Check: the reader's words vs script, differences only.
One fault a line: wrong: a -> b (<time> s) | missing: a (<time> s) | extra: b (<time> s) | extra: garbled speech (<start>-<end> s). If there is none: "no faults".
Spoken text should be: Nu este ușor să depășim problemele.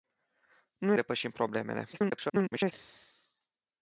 missing: este ușor să (0.9 s)
extra: garbled speech (1.9-2.7 s)